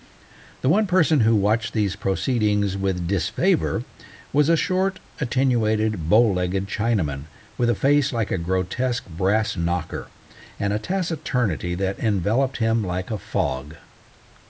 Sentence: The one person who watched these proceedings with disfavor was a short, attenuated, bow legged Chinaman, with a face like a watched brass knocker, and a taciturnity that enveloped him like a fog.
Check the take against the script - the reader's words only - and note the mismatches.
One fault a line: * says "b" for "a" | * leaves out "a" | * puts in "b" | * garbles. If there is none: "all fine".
* says "grotesque" for "watched"